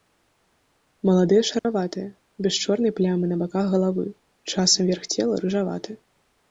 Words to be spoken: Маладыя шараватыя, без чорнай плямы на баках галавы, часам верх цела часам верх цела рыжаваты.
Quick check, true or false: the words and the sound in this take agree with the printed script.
false